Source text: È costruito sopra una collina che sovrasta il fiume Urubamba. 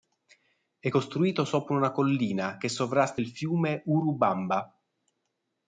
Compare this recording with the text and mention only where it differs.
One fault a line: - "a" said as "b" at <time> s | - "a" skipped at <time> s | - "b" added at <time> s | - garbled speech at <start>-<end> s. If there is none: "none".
none